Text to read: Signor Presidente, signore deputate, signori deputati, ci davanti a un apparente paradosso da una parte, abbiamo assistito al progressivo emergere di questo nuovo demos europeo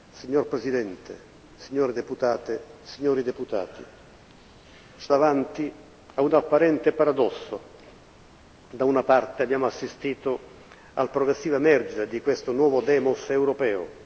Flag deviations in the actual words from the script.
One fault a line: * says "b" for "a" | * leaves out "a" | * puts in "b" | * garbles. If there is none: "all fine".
all fine